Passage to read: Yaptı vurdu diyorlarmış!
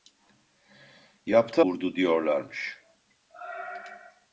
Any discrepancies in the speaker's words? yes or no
no